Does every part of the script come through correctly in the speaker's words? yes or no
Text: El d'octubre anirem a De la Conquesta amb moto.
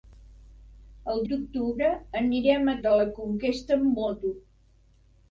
yes